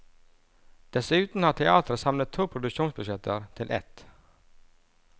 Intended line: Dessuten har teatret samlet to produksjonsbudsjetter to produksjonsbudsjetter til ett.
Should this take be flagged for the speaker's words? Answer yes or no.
yes